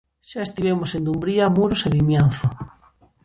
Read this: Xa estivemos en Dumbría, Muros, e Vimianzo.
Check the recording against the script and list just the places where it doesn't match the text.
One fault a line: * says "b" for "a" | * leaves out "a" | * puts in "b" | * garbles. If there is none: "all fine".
all fine